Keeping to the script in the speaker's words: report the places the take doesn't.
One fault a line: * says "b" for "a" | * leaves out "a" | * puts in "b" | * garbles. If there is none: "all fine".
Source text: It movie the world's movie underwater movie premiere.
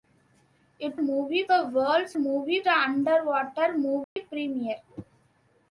all fine